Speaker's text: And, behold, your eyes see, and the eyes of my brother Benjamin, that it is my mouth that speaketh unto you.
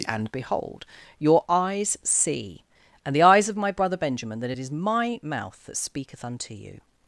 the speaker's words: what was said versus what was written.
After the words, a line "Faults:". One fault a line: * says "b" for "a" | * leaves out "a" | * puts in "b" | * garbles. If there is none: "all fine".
And, behold, your eyes see, and the eyes of my brother Benjamin, that it is my mouth that speaketh unto you.
Faults:
all fine